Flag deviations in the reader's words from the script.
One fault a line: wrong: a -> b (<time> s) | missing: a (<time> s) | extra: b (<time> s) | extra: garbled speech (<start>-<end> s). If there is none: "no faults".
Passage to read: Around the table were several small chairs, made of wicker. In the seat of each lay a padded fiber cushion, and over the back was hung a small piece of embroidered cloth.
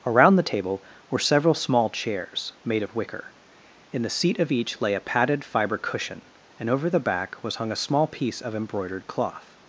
no faults